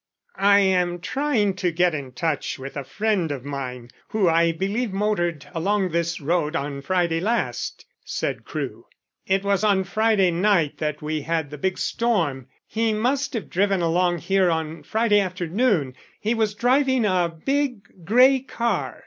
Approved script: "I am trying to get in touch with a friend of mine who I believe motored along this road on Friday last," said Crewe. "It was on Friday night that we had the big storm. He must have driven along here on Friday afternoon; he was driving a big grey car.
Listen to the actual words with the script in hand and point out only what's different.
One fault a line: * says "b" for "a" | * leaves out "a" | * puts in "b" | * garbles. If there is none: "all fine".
all fine